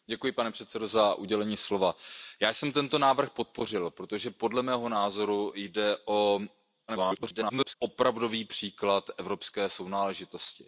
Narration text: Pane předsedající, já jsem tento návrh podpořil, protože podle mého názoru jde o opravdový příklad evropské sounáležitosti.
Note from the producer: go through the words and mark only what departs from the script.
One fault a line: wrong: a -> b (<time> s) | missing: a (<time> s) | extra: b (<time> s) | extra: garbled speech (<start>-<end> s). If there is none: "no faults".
extra: garbled speech (6.9-7.8 s)